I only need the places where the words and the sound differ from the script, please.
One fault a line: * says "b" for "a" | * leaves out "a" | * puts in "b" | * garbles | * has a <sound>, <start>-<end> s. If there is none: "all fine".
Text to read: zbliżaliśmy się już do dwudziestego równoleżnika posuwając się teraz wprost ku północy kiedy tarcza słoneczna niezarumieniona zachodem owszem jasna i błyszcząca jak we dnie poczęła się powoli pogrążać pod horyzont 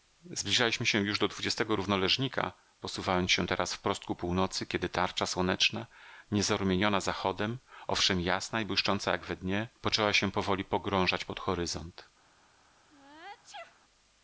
* has a sneeze, 12.9-13.8 s